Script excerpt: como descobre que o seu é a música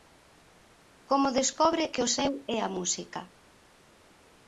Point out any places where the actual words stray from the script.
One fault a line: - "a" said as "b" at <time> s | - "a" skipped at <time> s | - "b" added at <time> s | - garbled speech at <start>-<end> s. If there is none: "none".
none